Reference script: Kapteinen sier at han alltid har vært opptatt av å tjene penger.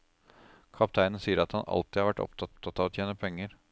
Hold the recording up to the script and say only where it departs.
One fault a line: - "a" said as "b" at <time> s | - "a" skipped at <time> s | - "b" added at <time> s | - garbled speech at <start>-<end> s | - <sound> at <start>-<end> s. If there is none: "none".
- "opptatt" added at 2.5 s